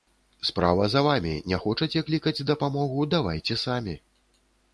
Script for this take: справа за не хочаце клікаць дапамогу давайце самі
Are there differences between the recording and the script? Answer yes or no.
yes